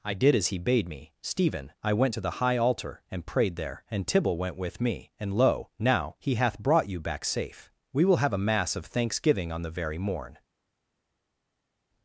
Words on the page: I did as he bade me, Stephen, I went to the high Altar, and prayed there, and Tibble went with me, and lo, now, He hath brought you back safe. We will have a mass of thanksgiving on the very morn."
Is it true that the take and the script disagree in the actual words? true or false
false